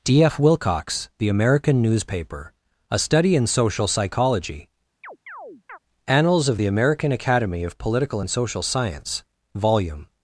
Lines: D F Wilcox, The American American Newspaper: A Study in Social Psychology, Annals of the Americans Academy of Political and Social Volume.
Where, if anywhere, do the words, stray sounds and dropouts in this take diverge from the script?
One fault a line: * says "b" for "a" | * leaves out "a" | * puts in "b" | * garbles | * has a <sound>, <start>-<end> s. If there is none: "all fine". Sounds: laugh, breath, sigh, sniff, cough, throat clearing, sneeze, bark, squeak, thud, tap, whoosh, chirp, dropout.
* leaves out "American"
* has a chirp, 5.0-5.8 s
* says "American" for "Americans"
* puts in "Science"